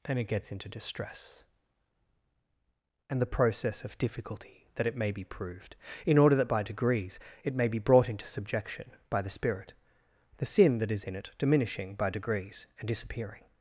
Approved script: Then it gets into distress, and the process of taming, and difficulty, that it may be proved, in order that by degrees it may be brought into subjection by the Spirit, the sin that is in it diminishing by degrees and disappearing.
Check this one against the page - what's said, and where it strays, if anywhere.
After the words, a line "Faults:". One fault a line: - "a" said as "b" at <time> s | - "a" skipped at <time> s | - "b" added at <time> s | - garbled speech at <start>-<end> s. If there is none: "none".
Then it gets into distress, and the process of difficulty, that it may be proved, in order that by degrees it may be brought into subjection by the Spirit, the sin that is in it diminishing by degrees and disappearing.
Faults:
- "taming and" skipped at 4.0 s